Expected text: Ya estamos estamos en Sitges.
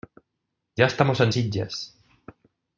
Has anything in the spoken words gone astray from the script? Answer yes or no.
yes